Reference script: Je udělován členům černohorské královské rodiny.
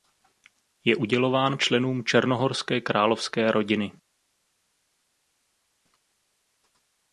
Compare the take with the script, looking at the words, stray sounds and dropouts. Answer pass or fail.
pass